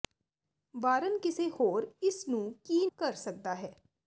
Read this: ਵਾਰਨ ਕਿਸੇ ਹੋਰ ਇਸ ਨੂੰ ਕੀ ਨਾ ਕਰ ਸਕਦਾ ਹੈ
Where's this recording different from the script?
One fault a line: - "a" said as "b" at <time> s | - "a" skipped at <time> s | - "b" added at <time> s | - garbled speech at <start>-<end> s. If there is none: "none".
- "ਨਾ" skipped at 2.9 s